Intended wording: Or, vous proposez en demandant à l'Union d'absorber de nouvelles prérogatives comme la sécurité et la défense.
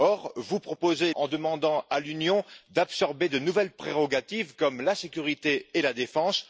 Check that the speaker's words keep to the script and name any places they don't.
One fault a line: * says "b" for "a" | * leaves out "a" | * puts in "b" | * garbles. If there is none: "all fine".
all fine